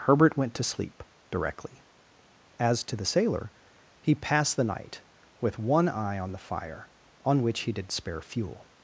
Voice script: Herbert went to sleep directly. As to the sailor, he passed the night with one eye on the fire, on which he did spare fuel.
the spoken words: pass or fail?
pass